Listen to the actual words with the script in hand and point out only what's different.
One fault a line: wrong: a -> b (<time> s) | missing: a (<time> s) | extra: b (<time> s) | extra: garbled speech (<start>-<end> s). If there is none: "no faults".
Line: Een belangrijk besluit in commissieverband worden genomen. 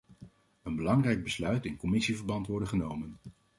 no faults